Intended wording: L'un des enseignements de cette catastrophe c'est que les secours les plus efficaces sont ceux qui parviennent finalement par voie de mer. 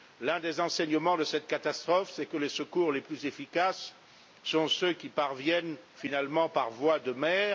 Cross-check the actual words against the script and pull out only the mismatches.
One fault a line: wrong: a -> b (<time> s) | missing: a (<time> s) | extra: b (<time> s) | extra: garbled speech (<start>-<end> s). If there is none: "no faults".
no faults